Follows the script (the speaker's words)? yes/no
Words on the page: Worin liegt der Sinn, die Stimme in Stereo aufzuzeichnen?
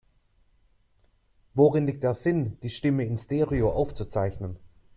yes